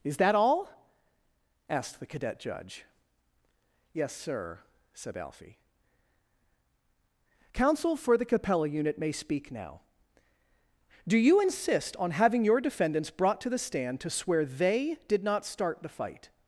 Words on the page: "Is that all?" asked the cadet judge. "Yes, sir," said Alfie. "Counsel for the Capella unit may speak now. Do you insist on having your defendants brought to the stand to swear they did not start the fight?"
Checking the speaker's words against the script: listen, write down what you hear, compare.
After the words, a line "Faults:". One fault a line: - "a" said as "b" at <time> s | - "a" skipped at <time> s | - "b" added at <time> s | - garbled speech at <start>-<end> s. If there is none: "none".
"Is that all?" asked the cadet judge. "Yes, sir," said Alfie. "Counsel for the Capella unit may speak now. Do you insist on having your defendants brought to the stand to swear they did not start the fight?"
Faults:
none